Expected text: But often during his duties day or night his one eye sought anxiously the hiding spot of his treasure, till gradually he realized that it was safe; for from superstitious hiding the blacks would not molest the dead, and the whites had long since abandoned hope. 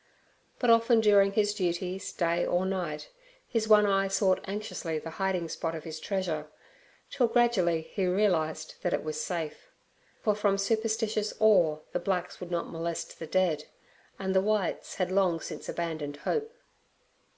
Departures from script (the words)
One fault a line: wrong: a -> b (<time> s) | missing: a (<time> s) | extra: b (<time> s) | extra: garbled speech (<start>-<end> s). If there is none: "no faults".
wrong: hiding -> awe (11.4 s)